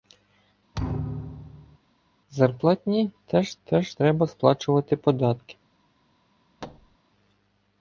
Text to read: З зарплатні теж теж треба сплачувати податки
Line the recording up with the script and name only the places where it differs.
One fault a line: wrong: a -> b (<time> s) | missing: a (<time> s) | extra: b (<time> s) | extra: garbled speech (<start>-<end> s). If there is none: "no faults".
no faults